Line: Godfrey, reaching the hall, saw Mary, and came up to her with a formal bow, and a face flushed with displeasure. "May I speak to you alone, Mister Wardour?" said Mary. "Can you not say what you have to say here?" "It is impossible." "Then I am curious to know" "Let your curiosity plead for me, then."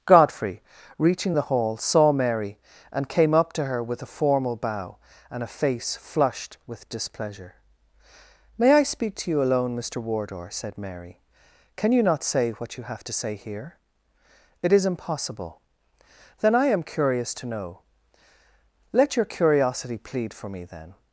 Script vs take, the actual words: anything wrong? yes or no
no